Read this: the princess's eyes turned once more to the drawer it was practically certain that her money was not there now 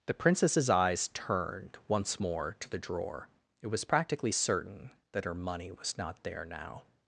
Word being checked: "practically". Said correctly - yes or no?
yes